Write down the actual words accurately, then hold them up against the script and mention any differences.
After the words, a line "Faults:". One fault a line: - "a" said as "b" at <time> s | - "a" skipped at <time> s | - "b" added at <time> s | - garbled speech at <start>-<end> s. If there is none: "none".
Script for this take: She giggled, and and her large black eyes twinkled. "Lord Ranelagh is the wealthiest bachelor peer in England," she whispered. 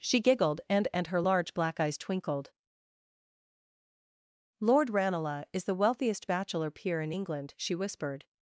She giggled, and and her large black eyes twinkled. "Lord Ranelagh is the wealthiest bachelor peer in England," she whispered.
Faults:
none